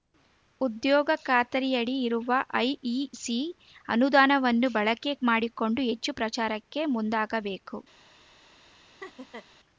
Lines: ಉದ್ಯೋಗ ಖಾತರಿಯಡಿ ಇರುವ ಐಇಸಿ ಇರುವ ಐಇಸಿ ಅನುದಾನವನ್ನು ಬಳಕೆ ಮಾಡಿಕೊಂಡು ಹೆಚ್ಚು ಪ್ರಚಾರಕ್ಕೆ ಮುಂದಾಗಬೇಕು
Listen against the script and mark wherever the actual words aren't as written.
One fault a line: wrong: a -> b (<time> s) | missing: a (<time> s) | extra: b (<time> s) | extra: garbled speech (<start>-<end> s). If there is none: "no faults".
missing: ಇರುವ ಐಇಸಿ (3.4 s)